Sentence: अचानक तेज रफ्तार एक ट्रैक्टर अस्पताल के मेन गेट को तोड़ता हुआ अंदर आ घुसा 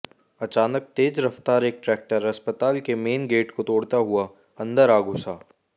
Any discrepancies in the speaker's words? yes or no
no